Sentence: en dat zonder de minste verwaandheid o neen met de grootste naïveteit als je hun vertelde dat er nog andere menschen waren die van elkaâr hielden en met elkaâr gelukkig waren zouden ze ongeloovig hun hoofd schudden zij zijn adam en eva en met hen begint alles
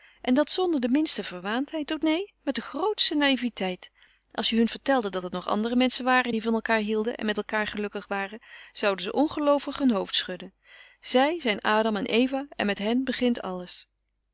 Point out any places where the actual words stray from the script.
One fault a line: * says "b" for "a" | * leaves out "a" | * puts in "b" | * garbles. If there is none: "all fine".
all fine